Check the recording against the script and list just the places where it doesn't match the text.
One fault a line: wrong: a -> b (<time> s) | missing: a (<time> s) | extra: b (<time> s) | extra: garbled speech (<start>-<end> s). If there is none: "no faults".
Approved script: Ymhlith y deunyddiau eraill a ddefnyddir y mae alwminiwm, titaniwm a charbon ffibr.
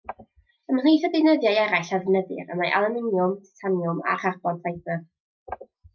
no faults